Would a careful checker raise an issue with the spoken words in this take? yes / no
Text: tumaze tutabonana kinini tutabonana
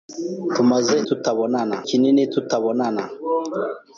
no